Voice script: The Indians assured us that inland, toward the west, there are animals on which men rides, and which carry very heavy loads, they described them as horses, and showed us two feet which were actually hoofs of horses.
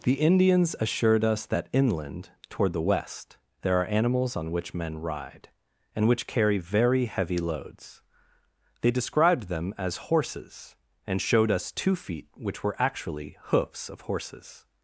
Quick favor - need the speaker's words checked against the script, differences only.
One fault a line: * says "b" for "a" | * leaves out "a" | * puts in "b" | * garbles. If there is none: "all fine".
* says "ride" for "rides"